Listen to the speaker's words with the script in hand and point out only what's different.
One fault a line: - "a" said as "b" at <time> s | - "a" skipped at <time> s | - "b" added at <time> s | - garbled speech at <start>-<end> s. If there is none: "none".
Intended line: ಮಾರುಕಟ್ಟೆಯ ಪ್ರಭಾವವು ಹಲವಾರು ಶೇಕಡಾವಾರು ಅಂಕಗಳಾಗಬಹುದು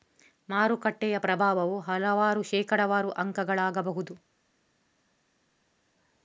none